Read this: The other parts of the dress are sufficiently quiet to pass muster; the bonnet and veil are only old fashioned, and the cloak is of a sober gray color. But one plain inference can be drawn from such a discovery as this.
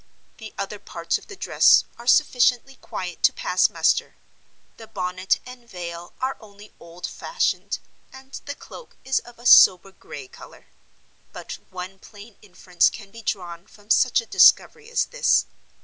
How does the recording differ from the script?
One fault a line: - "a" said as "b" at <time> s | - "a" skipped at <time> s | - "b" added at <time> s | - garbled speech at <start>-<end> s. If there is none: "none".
none